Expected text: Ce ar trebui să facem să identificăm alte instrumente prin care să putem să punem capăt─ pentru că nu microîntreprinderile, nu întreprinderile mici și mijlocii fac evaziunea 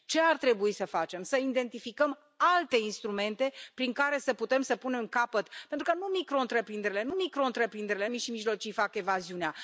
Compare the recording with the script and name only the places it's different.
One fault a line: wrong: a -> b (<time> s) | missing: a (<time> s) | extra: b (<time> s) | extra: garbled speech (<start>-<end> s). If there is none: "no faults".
wrong: întreprinderile -> microîntreprinderile (7.1 s)